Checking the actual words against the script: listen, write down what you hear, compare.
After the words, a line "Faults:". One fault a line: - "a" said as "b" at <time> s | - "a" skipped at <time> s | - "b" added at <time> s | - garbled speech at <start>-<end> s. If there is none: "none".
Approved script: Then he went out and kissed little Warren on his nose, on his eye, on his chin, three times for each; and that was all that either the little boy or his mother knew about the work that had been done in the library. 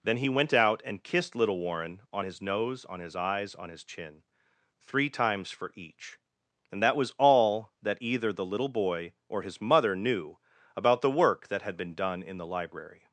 Then he went out and kissed little Warren on his nose, on his eyes, on his chin, three times for each; and that was all that either the little boy or his mother knew about the work that had been done in the library.
Faults:
- "eye" said as "eyes" at 3.1 s